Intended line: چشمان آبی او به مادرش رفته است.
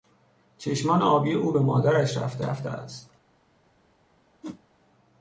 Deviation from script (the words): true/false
true